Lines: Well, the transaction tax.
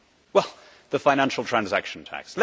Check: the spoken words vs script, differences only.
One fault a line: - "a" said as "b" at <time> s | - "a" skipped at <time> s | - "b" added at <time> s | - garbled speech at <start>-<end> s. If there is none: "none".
- "financial" added at 1.0 s